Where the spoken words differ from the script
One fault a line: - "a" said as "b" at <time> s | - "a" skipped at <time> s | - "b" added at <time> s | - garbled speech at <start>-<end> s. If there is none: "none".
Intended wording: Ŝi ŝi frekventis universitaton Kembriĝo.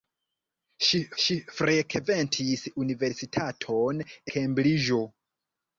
none